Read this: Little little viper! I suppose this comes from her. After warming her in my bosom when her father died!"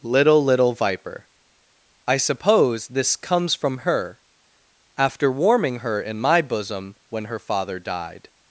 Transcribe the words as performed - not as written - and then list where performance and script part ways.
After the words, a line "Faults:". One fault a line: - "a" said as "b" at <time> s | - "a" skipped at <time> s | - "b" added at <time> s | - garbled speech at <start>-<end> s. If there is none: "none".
Little little viper! I suppose this comes from her. After warming her in my bosom when her father died!"
Faults:
none